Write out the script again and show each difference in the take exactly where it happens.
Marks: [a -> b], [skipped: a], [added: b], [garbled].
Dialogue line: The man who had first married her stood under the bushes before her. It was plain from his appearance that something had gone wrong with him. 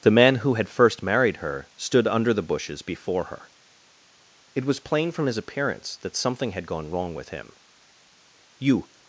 The man who had first married her stood under the bushes before her. It was plain from his appearance that something had gone wrong with him. [added: You]